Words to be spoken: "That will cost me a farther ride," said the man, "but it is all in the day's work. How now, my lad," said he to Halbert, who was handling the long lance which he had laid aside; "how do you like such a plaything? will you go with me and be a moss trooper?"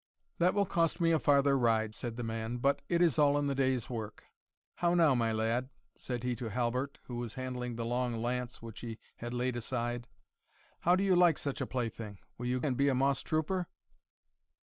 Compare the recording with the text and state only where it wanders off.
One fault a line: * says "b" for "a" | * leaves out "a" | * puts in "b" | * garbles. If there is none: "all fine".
* leaves out "go with me"